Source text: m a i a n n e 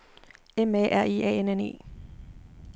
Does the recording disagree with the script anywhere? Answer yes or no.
yes